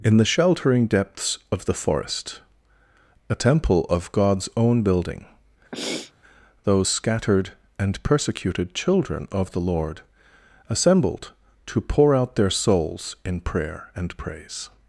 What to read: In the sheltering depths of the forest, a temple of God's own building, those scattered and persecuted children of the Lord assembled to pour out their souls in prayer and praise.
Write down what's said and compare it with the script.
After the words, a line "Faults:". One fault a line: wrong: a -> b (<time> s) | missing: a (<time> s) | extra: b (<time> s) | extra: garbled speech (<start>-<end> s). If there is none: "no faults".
In the sheltering depths of the forest, a temple of God's own building, those scattered and persecuted children of the Lord assembled to pour out their souls in prayer and praise.
Faults:
no faults